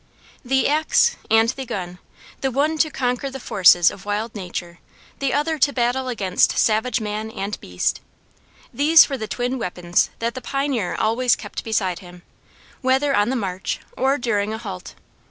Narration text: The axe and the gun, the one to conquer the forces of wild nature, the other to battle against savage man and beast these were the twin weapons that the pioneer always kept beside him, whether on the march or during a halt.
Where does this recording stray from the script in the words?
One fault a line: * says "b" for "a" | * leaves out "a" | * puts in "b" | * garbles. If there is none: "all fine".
all fine